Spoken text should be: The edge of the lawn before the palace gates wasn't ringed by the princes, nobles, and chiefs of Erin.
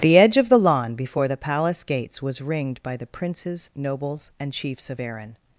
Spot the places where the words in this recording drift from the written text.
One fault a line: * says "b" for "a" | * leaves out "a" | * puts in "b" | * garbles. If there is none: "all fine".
* says "was" for "wasn't"